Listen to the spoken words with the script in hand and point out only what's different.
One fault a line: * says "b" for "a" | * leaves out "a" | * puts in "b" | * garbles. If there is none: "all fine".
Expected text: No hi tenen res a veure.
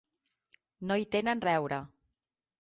* leaves out "res"